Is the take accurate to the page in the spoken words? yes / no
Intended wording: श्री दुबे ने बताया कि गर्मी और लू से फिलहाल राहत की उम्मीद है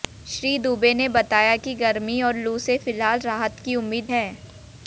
yes